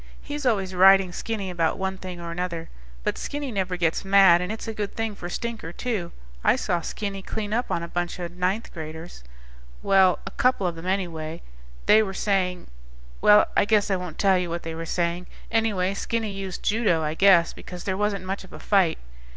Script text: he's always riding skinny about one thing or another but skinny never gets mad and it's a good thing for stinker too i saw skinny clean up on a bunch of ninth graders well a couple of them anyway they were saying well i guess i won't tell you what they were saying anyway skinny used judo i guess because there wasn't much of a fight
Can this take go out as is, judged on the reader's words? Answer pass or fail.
pass